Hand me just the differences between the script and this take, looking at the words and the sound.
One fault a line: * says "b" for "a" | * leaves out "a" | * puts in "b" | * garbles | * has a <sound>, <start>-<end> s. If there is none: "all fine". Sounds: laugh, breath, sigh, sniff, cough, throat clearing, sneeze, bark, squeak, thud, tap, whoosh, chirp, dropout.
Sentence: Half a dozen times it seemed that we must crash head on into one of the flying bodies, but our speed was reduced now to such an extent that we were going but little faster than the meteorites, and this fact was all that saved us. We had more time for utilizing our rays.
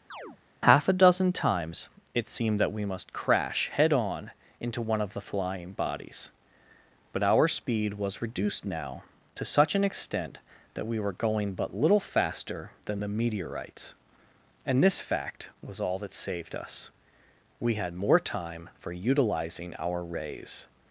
* has a chirp, 0.1-0.4 s